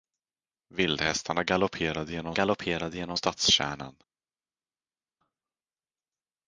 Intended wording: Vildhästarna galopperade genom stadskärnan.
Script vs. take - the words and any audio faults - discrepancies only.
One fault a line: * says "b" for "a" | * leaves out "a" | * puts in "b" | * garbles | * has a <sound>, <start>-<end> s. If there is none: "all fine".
* puts in "galopperade genom"